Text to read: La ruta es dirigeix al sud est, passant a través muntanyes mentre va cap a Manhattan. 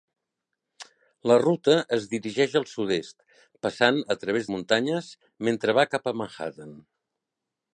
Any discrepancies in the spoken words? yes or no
no